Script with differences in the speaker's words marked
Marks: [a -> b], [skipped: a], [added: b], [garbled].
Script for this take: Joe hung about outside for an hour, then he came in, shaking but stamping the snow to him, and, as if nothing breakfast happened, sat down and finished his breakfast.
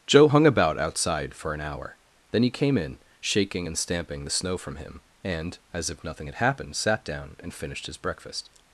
Joe hung about outside for an hour, then he came in, shaking [but -> and] stamping the snow [to -> from] him, and, as if nothing [breakfast -> had] happened, sat down and finished his breakfast.